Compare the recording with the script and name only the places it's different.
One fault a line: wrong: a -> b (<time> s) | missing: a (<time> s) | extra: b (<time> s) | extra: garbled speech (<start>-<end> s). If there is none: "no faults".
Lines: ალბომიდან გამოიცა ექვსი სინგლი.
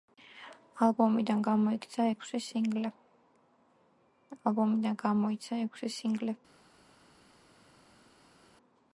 no faults